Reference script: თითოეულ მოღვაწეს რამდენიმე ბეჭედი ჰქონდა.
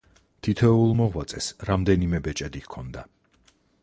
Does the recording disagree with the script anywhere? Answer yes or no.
no